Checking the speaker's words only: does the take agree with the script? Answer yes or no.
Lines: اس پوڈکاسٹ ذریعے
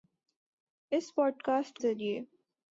yes